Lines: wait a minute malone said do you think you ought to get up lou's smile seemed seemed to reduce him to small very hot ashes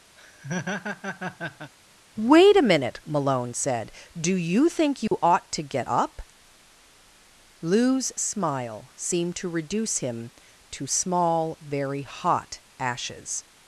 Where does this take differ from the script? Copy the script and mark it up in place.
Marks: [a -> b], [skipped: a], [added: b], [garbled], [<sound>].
[laugh] wait a minute malone said do you think you [dropout] ought to get up lou's smile seemed [skipped: seemed] to reduce him to small very hot ashes